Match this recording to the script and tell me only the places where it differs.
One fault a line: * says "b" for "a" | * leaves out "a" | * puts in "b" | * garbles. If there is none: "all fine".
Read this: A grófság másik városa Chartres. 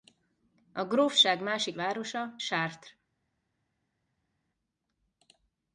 all fine